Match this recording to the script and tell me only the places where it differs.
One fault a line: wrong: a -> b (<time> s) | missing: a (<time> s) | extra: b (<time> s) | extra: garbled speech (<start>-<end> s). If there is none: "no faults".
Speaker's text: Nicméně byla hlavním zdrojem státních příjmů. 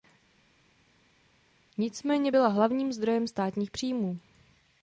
no faults